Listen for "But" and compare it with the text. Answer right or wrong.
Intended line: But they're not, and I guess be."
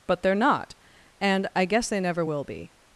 right